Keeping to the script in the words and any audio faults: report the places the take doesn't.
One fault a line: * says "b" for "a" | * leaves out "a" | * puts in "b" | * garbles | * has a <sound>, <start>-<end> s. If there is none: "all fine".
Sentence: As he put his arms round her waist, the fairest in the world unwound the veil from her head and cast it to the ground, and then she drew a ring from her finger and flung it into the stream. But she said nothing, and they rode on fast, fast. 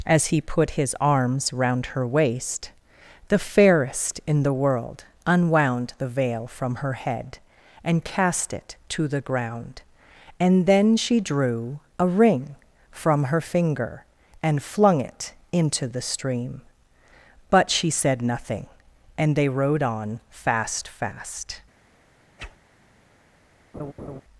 * has a whoosh, 22.4-22.6 s
* has a laugh, 23.7-24.2 s